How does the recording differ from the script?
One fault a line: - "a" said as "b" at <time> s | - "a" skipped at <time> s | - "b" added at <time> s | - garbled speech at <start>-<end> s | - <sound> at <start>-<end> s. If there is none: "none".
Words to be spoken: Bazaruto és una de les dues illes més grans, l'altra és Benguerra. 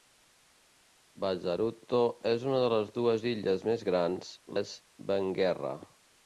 - "l'altra" skipped at 4.3 s